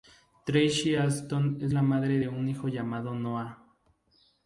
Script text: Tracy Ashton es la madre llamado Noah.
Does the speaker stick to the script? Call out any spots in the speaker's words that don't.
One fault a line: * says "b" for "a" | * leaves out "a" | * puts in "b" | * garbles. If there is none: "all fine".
* puts in "de un hijo"